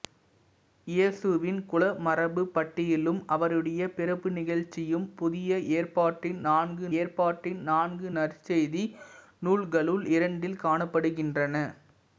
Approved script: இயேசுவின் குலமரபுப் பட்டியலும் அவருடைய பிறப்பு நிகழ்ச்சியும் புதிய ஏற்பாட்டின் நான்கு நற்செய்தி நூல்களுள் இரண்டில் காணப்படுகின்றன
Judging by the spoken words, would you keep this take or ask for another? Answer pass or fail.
fail